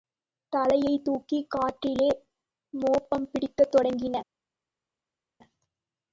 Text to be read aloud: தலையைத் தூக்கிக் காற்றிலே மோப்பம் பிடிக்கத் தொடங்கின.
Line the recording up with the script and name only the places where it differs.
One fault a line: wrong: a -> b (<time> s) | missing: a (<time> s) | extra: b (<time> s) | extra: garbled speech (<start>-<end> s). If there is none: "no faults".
no faults